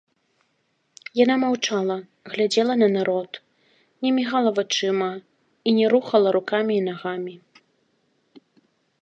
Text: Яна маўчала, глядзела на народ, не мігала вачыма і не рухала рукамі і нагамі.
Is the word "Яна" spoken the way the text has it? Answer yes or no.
yes